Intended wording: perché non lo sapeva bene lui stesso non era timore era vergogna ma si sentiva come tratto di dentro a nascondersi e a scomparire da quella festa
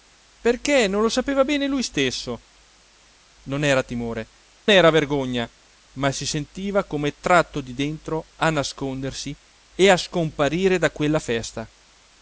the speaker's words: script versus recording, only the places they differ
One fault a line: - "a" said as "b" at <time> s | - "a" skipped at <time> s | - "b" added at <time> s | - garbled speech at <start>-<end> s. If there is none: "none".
none